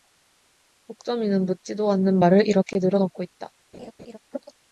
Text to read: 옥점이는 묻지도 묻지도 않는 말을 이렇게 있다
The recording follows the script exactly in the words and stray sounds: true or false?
false